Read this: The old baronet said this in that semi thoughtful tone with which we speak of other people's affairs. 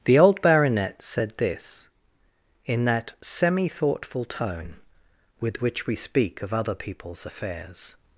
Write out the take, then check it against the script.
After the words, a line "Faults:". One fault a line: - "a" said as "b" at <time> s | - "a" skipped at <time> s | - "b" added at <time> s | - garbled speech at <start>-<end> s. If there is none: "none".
The old baronet said this in that semi thoughtful tone with which we speak of other people's affairs.
Faults:
none